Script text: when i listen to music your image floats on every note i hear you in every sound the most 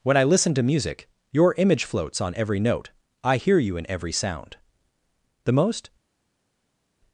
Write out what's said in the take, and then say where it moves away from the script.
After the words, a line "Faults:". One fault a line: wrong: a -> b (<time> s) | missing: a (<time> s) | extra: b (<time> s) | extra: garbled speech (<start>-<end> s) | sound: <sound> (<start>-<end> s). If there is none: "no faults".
when i listen to music your image floats on every note i hear you in every sound the most
Faults:
no faults